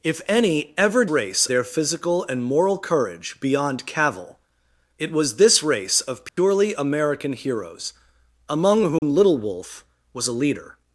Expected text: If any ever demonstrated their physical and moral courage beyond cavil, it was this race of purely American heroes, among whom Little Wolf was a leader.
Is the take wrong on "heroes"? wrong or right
right